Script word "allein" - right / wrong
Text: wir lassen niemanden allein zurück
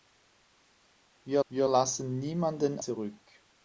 wrong